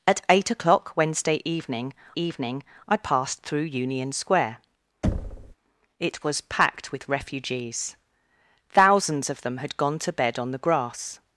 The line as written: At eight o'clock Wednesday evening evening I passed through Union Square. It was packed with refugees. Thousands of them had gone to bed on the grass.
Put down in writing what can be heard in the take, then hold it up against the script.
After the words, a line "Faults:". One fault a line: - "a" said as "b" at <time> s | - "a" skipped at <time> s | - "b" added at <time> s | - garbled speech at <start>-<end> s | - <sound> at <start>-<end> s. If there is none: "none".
At eight o'clock Wednesday evening evening I passed through Union Square. It was packed with refugees. Thousands of them had gone to bed on the grass.
Faults:
- thud at 5.0-5.6 s